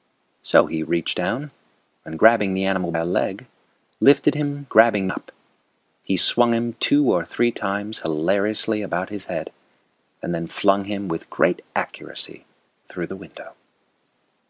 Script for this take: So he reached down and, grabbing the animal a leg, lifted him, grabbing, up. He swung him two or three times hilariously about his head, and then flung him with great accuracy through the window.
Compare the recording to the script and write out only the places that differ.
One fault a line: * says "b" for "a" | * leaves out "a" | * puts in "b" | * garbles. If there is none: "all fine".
all fine